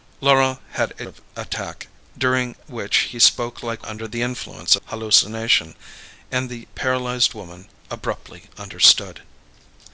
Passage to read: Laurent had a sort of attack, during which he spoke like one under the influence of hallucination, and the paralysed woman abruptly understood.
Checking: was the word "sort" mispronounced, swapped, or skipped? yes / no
yes